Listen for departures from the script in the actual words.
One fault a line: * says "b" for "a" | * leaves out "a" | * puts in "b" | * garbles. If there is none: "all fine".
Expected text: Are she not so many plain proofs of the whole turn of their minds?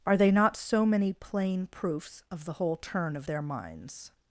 * says "they" for "she"